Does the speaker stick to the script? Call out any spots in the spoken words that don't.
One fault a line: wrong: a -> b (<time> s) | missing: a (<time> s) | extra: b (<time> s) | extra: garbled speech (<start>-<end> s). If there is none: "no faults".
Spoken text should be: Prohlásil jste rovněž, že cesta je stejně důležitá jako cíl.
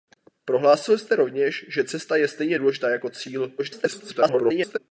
extra: garbled speech (3.6-4.8 s)